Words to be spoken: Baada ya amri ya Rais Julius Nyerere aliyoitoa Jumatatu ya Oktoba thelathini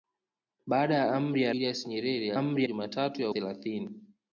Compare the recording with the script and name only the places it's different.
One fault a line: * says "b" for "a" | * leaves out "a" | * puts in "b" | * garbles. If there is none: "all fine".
* leaves out "Rais"
* says "amri" for "aliyoitoa"
* leaves out "Oktoba"